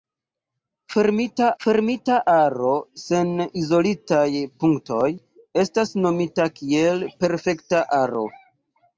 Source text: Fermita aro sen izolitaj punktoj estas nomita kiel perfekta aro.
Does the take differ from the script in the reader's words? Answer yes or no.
yes